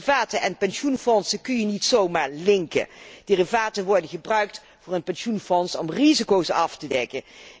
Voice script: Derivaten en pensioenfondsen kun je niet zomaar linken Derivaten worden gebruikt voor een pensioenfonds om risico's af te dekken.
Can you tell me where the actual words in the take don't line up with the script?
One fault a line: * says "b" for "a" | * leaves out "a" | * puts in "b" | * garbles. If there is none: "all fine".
all fine